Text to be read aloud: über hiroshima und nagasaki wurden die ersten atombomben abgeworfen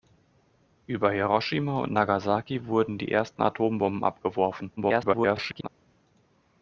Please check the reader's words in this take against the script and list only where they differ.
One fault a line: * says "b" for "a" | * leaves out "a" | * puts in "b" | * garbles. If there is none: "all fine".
* garbles